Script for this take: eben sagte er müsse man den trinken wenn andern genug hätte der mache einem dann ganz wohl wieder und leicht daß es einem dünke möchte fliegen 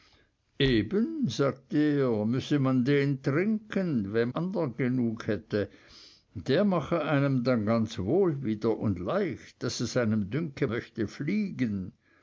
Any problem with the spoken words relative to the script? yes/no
no